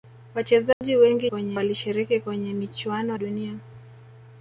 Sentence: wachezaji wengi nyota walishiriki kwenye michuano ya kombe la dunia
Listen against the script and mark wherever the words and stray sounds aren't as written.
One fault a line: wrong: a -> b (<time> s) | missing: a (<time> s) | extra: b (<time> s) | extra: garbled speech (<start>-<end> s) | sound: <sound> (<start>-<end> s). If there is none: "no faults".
sound: dropout (0.7-0.8 s)
wrong: nyota -> kwenye (1.3 s)
missing: ya kombe la (3.2 s)